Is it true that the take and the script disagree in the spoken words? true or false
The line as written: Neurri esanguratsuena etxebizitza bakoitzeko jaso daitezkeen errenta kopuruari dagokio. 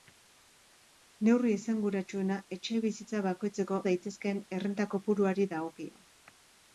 true